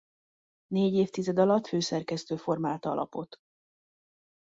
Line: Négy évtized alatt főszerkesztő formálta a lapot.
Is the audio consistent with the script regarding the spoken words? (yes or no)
yes